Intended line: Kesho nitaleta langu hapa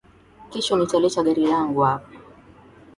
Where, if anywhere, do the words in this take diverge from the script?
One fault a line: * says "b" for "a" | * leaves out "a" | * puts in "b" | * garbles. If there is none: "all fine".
* puts in "gari"